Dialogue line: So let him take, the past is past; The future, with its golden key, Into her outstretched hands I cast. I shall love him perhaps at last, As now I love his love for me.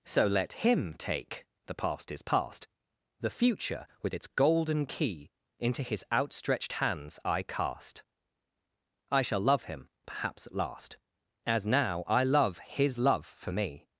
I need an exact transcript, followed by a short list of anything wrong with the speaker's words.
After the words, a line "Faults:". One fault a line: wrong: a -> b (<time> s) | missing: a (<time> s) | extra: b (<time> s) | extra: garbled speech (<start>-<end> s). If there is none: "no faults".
So let him take, the past is past; The future, with its golden key, Into his outstretched hands I cast. I shall love him perhaps at last, As now I love his love for me.
Faults:
wrong: her -> his (5.8 s)